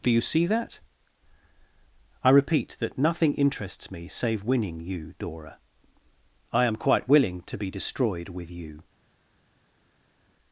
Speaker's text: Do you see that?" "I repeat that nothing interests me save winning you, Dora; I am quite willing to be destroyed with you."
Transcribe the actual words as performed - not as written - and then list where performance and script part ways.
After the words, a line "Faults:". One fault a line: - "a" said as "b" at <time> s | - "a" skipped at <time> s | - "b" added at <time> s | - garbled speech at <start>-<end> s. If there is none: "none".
Do you see that?" "I repeat that nothing interests me save winning you, Dora; I am quite willing to be destroyed with you."
Faults:
none